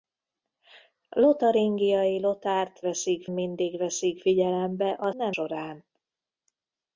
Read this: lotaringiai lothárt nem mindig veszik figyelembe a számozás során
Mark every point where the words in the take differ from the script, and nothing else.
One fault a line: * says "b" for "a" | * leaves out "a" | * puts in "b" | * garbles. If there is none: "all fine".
* says "veszik" for "nem"
* says "nem" for "számozás"